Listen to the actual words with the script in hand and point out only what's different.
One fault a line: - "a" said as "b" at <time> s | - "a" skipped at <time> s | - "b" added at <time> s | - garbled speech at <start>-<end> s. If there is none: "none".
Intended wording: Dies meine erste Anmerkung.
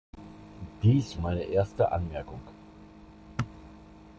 none